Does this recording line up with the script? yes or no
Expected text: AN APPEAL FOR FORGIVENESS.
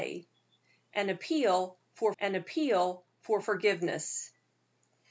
no